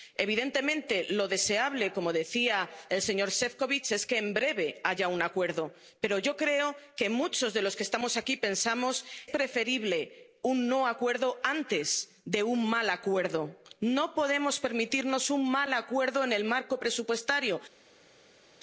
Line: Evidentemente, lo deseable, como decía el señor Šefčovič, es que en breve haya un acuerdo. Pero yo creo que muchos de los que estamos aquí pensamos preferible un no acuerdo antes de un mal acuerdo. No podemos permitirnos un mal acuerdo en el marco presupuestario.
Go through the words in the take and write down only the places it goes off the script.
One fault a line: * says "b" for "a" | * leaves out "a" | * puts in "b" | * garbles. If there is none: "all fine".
all fine